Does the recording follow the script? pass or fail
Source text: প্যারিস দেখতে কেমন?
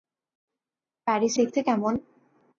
pass